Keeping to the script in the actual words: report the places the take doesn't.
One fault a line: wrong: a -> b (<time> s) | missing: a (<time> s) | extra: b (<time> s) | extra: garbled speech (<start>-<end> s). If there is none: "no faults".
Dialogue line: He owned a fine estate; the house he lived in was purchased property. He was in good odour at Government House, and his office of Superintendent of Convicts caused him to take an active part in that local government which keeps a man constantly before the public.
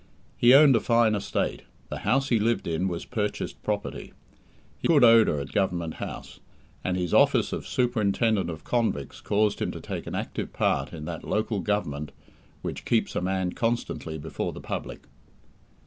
missing: was in (4.9 s)